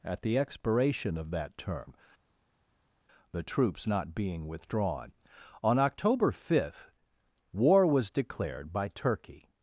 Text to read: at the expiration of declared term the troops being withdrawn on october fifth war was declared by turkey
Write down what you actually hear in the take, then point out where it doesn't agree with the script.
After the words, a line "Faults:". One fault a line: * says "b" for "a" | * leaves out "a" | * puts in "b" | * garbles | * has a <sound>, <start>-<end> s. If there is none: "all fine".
at the expiration of that term the troops not being withdrawn on october fifth war was declared by turkey
Faults:
* says "that" for "declared"
* puts in "not"